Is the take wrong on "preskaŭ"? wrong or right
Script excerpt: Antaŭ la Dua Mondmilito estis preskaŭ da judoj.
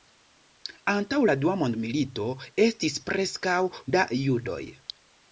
right